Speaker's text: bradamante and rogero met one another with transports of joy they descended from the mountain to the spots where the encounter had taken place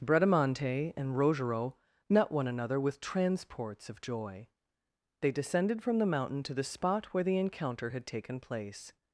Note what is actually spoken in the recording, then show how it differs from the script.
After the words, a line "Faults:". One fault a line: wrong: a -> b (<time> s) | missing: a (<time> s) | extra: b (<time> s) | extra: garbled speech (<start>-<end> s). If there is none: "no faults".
bradamante and rogero met one another with transports of joy they descended from the mountain to the spot where the encounter had taken place
Faults:
wrong: spots -> spot (6.6 s)